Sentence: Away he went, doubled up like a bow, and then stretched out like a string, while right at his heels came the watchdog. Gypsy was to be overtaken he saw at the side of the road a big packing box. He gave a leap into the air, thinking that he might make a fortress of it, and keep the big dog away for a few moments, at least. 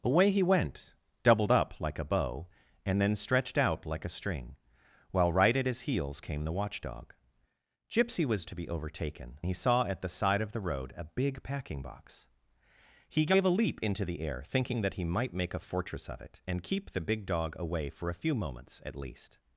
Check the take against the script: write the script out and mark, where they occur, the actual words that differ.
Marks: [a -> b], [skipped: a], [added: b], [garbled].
Away he went, doubled up like a bow, and then stretched out like a string, while right at his heels came the watchdog. Gypsy was to be overtaken he saw at the side of the road a big packing box. He gave a leap into the air, thinking that he might make a fortress of it, and keep the big dog away for a few moments, at least.